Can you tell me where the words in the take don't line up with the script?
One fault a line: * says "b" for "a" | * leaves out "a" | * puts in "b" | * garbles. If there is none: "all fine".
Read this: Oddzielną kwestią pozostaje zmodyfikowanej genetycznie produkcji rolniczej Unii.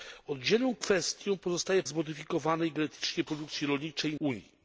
all fine